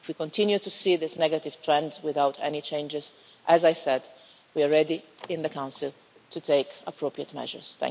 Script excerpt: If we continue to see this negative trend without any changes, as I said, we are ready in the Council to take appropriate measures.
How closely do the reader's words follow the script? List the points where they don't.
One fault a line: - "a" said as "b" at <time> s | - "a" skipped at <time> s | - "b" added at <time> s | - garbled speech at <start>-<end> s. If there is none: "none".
none